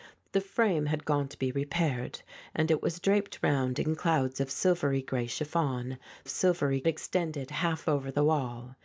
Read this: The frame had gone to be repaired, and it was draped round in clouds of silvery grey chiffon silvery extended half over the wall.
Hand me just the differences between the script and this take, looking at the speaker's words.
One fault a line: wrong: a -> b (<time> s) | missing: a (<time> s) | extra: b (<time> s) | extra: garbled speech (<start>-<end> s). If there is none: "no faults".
no faults